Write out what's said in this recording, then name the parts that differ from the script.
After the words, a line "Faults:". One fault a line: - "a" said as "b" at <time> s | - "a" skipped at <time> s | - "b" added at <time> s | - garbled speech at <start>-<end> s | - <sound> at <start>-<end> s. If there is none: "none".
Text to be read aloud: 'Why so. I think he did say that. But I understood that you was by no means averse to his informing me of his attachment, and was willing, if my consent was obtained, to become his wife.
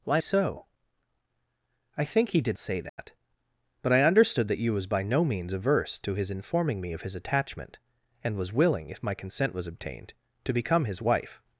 'Why so. I think he did say that. But I understood that you was by no means averse to his informing me of his attachment, and was willing, if my consent was obtained, to become his wife.
Faults:
- dropout at 2.9-3.0 s